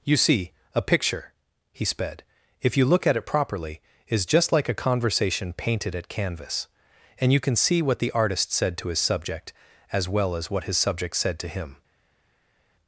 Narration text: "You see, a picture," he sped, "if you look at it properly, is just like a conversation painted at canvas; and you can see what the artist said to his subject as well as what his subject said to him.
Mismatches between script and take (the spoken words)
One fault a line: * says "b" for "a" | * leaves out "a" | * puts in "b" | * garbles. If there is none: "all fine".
all fine